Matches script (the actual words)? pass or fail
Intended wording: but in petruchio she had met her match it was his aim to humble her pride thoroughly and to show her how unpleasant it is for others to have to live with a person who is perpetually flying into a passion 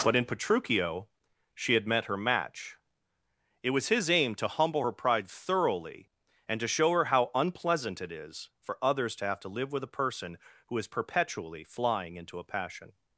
pass